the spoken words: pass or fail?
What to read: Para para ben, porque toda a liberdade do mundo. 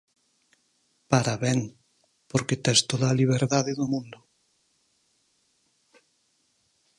fail